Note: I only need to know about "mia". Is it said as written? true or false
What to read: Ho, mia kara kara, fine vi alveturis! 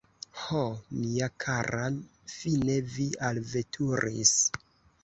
true